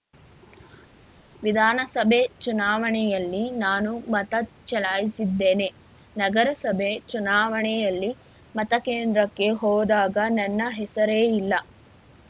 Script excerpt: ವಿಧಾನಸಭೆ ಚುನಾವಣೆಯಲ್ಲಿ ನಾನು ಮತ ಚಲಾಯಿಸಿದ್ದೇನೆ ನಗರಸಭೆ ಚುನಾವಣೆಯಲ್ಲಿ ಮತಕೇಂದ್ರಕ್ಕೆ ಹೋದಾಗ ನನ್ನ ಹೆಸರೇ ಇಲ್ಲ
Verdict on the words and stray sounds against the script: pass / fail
pass